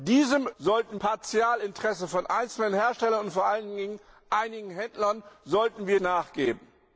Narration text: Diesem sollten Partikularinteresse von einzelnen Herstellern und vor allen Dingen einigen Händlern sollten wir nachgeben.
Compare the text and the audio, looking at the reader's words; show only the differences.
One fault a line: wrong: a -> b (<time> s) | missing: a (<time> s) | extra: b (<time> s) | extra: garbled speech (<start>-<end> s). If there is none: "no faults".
no faults